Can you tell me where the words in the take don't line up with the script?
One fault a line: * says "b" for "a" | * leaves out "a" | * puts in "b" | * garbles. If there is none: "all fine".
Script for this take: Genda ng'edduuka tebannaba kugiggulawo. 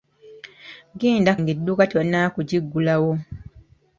all fine